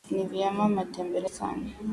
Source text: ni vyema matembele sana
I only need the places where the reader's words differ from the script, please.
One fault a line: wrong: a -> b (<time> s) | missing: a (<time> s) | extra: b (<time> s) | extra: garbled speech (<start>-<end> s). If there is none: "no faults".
no faults